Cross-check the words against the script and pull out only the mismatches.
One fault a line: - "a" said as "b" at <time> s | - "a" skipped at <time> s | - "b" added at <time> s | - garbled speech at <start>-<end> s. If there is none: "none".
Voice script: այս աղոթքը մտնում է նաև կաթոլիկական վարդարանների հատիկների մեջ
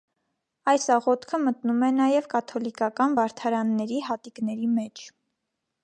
none